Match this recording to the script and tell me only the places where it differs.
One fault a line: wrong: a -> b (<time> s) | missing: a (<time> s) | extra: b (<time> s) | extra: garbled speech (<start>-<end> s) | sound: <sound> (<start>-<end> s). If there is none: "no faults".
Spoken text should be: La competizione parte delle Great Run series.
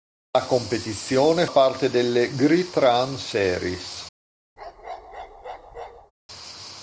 sound: bark (4.6-6.1 s)